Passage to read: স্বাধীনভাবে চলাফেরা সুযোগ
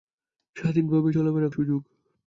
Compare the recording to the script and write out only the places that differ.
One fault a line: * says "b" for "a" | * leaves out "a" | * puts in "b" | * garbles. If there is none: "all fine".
all fine